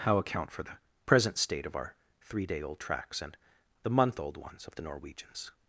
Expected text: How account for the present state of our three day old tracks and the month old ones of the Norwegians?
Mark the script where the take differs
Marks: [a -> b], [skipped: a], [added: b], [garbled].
How account for the present state of our three day old tracks and the month old ones of the Norwegians?